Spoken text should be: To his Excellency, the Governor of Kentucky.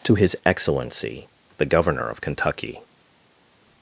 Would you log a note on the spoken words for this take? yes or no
no